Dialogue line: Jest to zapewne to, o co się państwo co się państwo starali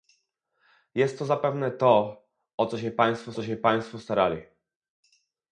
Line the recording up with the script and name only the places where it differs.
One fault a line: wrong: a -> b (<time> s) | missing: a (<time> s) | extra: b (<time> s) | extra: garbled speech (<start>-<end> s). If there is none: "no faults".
no faults